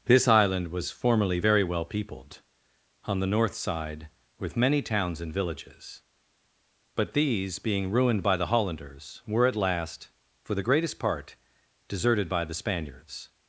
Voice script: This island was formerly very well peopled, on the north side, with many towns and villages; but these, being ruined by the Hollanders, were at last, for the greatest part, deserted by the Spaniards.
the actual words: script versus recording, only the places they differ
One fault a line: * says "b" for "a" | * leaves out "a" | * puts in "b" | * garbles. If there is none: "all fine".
all fine